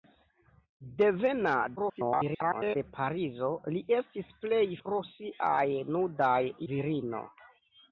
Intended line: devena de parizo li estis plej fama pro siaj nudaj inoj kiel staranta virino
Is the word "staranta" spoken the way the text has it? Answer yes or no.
no